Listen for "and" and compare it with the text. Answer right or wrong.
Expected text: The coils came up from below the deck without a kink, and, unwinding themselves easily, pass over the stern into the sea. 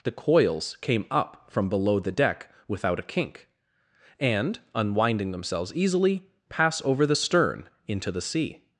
right